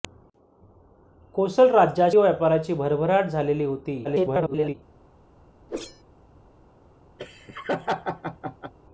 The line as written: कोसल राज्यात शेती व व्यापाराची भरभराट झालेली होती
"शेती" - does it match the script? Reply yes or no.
no